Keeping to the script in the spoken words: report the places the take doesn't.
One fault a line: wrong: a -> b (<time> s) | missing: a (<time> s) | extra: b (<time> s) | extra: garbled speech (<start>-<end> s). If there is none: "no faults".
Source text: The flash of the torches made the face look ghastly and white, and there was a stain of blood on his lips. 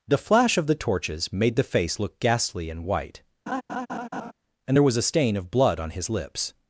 no faults